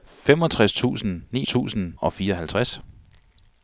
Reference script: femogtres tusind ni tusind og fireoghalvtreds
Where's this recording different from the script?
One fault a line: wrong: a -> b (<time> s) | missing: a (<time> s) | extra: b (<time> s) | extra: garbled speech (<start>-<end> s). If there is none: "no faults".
no faults